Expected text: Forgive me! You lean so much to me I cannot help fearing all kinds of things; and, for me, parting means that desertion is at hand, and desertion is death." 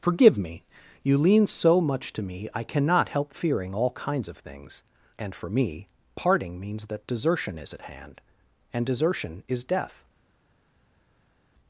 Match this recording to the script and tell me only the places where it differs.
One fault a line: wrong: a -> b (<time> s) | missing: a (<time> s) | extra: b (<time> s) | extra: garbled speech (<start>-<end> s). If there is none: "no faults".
no faults